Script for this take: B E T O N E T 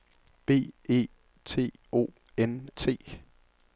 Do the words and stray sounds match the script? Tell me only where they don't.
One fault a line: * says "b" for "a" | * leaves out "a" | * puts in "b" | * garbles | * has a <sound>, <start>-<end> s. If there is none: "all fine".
* leaves out "E"